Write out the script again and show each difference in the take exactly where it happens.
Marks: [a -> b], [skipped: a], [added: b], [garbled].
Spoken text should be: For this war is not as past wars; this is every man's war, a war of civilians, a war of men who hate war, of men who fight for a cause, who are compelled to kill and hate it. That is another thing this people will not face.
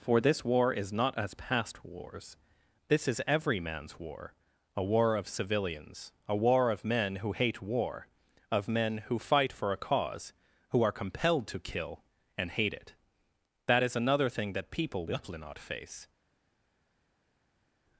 For this war is not as past wars; this is every man's war, a war of civilians, a war of men who hate war, of men who fight for a cause, who are compelled to kill and hate it. That is another thing [this -> that] people will not face.